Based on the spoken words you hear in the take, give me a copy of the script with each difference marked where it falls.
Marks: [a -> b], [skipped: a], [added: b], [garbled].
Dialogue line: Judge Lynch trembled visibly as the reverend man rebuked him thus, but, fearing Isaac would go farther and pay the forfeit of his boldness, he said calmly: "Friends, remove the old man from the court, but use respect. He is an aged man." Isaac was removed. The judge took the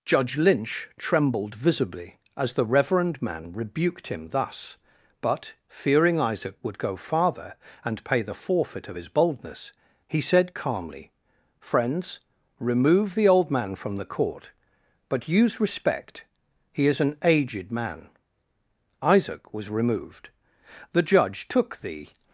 Judge Lynch trembled visibly as the reverend man rebuked him thus, but, fearing Isaac would go farther and pay the forfeit of his boldness, he said calmly: "Friends, remove the old man from the court, but use respect. He is an aged man." Isaac was removed. The judge took the